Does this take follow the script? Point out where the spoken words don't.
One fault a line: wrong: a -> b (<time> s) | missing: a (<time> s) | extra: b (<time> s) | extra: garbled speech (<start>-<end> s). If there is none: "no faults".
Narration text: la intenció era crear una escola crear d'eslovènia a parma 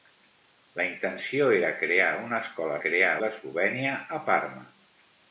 no faults